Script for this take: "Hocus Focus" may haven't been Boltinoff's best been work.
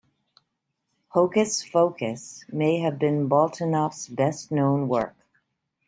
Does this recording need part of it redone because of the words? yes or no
yes